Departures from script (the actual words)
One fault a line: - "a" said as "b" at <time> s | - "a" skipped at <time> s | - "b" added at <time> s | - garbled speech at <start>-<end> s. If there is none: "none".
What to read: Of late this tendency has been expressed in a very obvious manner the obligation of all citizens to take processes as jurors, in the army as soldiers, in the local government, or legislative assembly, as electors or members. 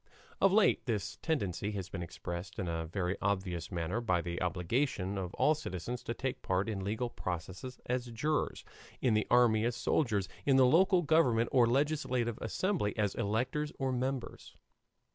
- "by" added at 4.0 s
- "part in legal" added at 6.4 s